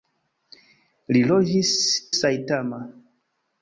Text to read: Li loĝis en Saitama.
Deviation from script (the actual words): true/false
true